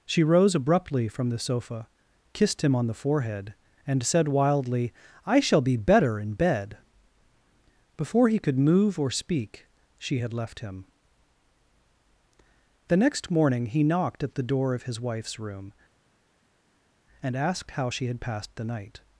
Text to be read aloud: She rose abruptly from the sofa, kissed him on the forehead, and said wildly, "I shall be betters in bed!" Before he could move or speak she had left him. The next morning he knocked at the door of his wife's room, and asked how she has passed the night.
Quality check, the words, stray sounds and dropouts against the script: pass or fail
fail